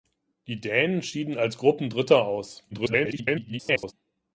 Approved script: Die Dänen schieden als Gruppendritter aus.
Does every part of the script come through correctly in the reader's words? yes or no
no